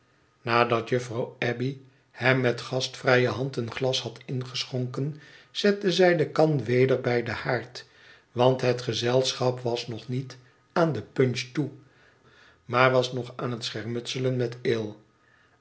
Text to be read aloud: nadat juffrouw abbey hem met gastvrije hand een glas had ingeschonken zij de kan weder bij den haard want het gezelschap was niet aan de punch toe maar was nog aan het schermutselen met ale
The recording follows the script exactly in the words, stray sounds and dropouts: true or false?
false